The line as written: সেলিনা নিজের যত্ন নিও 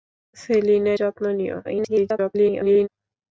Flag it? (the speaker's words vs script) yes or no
yes